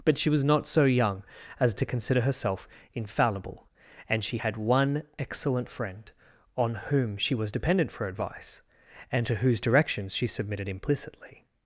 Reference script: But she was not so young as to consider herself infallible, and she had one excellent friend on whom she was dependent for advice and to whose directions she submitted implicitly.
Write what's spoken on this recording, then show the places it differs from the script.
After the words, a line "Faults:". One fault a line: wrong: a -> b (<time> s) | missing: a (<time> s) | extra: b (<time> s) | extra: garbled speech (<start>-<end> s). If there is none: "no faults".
But she was not so young as to consider herself infallible, and she had one excellent friend on whom she was dependent for advice and to whose directions she submitted implicitly.
Faults:
no faults